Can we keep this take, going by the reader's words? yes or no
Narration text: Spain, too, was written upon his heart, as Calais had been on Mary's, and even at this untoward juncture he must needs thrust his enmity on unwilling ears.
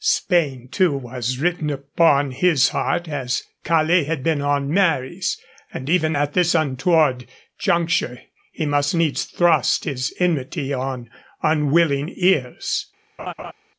yes